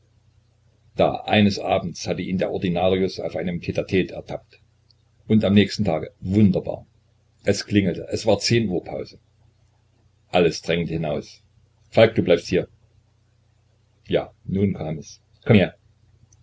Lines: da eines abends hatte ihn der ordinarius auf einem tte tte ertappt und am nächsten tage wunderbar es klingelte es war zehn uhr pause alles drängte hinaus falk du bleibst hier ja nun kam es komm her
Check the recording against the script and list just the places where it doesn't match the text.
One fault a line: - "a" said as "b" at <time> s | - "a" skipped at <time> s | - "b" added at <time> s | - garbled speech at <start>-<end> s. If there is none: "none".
none